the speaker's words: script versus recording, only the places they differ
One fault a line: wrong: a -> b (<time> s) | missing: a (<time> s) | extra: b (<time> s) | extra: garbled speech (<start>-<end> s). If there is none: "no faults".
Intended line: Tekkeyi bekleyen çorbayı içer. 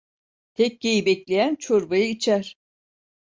no faults